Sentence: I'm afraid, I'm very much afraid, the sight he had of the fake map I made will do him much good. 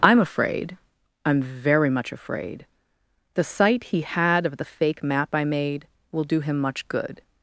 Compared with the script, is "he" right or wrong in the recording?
right